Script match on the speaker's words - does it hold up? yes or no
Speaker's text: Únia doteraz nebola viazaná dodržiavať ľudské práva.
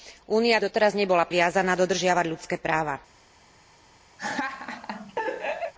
yes